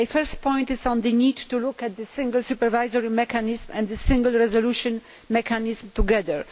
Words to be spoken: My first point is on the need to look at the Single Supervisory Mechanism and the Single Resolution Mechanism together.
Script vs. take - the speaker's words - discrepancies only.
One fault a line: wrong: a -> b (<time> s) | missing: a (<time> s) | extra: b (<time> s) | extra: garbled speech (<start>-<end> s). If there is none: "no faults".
no faults